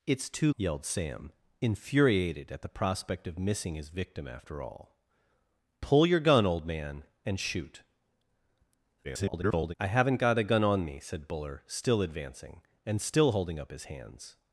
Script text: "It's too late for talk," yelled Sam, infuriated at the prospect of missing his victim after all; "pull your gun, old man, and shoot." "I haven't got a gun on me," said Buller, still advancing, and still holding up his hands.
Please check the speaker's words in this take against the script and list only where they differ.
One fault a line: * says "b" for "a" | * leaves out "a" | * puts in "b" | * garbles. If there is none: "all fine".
* leaves out "late for talk"
* garbles